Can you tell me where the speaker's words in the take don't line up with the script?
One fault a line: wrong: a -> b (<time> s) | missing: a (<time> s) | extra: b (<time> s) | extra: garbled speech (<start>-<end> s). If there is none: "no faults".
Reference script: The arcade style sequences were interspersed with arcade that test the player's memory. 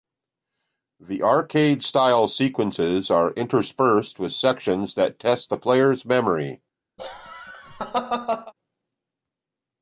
wrong: were -> are (3.1 s)
wrong: arcade -> sections (4.3 s)